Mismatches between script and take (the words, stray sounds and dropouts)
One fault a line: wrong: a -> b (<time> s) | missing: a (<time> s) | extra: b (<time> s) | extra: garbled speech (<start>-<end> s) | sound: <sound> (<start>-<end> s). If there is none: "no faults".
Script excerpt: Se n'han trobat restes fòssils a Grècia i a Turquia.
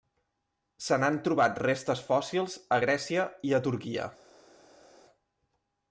no faults